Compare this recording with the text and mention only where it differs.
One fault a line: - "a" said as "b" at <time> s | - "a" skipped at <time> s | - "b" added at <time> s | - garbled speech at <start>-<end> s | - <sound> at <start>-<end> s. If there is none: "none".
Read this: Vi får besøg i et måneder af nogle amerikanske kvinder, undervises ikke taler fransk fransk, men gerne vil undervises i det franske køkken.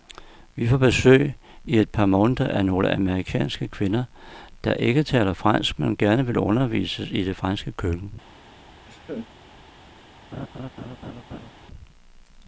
- "par" added at 1.9 s
- "undervises" said as "der" at 4.6 s
- "fransk" skipped at 5.8 s
- laugh at 8.9-9.3 s
- laugh at 10.3-11.5 s